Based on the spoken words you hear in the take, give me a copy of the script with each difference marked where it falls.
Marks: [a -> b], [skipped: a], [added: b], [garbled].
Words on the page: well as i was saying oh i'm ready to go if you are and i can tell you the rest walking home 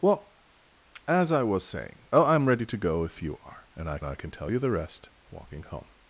well as i was saying oh i'm ready to go if you are and i [added: i] can tell you the rest walking home